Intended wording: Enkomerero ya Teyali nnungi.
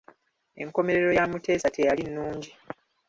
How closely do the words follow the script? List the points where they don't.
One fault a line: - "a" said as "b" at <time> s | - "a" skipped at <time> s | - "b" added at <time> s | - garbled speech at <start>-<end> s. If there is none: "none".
- "Muteesa" added at 1.3 s